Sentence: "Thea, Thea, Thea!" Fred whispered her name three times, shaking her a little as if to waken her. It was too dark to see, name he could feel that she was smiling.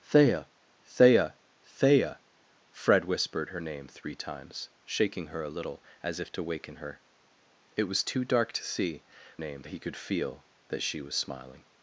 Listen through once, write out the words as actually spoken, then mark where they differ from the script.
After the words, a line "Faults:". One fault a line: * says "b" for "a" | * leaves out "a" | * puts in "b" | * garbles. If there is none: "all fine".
"Thea, Thea, Thea!" Fred whispered her name three times, shaking her a little as if to waken her. It was too dark to see, name he could feel that she was smiling.
Faults:
all fine